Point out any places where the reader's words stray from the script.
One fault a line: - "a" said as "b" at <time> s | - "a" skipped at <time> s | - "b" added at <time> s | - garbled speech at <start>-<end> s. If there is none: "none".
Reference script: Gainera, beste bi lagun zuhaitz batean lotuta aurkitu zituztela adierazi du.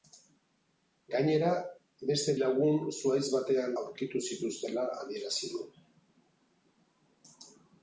- "bi" skipped at 2.4 s
- "lotuta" skipped at 3.8 s